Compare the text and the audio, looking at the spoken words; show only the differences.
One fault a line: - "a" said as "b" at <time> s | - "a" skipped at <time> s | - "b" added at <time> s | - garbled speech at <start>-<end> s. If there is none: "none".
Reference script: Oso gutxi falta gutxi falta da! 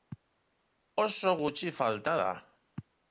- "gutxi falta" skipped at 2.1 s